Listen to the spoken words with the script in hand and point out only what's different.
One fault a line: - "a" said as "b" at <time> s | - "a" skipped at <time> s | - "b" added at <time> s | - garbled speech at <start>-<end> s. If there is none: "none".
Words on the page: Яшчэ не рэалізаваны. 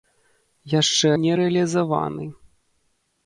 none